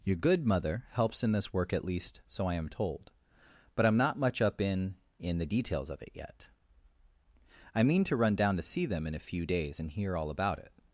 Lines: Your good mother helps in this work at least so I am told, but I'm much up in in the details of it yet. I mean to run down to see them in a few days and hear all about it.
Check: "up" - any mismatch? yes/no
no